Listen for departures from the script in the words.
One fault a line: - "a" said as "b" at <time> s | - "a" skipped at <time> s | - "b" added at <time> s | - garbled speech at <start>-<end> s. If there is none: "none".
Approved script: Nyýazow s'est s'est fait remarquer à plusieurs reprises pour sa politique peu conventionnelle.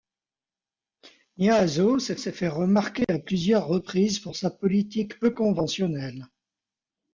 none